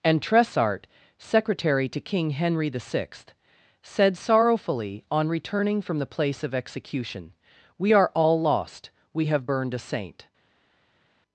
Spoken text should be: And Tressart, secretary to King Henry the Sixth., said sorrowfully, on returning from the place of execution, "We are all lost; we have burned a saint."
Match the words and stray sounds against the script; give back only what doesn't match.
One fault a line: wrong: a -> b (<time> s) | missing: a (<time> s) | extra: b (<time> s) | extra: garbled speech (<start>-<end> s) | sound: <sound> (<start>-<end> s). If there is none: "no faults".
no faults